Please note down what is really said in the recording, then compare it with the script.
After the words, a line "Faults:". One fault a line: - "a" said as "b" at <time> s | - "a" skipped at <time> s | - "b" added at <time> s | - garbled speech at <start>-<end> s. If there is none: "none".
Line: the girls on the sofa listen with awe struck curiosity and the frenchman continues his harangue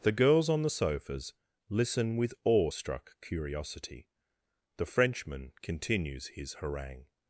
the girls on the sofas listen with awe struck curiosity the frenchman continues his harangue
Faults:
- "sofa" said as "sofas" at 0.7 s
- "and" skipped at 4.1 s